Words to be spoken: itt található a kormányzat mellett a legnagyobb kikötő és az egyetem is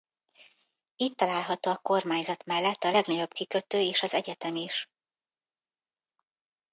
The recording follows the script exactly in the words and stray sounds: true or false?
true